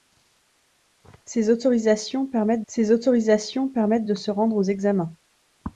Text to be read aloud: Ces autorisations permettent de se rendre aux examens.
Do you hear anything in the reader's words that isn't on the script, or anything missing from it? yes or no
yes